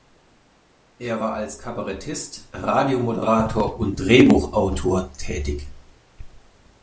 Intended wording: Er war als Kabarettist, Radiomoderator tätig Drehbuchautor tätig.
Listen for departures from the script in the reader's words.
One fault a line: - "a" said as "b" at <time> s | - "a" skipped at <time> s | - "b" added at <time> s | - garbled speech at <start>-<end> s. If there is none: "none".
- "tätig" said as "und" at 3.8 s